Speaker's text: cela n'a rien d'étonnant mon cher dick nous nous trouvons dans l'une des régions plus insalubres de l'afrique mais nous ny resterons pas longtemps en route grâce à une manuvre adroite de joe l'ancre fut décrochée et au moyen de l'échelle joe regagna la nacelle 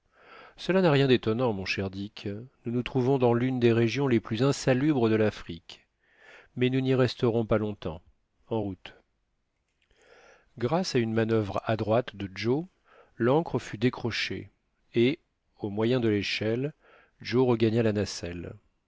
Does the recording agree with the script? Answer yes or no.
no